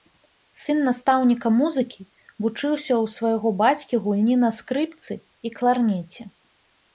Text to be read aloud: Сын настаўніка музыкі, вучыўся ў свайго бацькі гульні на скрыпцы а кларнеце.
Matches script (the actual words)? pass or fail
fail